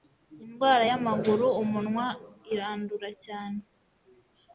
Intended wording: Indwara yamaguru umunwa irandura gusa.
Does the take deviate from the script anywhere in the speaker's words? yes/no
yes